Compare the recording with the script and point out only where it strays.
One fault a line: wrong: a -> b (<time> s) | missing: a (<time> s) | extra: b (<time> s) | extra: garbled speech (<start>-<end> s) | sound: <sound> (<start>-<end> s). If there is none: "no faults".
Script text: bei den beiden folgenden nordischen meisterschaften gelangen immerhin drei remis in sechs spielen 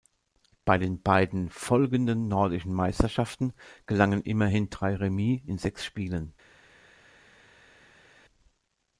no faults